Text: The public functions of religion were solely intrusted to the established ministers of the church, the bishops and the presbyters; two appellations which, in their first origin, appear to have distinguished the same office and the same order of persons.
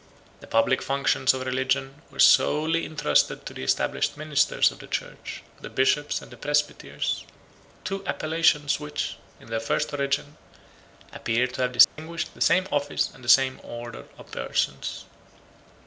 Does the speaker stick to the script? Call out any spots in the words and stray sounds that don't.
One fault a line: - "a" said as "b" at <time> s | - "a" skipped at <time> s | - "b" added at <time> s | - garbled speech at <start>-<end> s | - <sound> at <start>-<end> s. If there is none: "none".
- dropout at 11.8-12.0 s